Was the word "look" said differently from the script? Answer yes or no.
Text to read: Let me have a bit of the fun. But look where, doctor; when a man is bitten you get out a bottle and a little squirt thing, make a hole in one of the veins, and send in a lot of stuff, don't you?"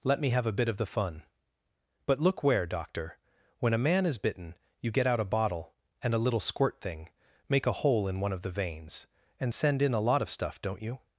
no